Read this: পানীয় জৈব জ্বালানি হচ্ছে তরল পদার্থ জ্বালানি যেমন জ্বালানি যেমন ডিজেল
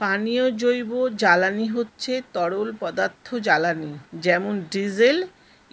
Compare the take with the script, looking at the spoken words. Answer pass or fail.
fail